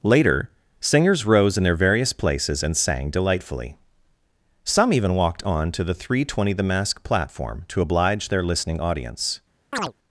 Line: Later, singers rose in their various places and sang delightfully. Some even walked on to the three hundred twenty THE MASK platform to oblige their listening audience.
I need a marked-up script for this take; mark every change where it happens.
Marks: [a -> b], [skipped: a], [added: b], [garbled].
Later, singers rose in their various places and sang delightfully. Some even walked on to the three hundred twenty THE MASK platform to oblige their listening audience.